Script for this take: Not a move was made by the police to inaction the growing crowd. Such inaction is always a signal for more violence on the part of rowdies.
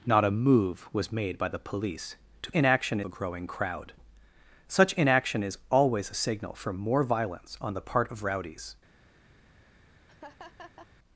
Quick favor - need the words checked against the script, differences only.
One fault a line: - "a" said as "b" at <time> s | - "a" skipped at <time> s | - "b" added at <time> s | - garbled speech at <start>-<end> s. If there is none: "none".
none